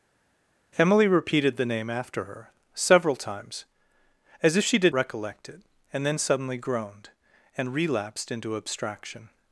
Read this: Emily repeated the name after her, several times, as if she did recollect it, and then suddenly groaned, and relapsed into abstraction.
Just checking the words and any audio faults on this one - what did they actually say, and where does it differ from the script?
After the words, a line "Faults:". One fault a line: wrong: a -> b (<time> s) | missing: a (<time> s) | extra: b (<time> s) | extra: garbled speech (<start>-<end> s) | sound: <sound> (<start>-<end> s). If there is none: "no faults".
Emily repeated the name after her, several times, as if she did recollect it, and then suddenly groaned, and relapsed into abstraction.
Faults:
no faults